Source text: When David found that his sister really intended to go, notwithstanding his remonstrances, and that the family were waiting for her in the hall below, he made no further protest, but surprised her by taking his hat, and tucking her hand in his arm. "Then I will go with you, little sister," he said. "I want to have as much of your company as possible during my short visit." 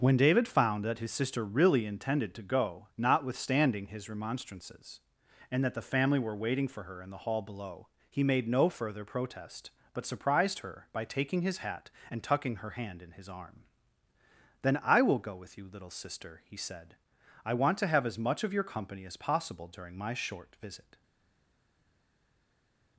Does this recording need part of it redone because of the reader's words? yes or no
no